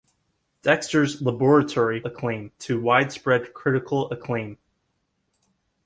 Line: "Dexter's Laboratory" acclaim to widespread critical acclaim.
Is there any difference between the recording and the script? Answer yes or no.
no